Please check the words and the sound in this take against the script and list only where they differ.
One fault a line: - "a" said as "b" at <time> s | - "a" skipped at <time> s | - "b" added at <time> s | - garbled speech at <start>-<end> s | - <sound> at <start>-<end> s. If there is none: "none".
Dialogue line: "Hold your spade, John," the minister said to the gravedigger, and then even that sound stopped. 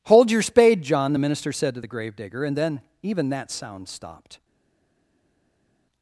none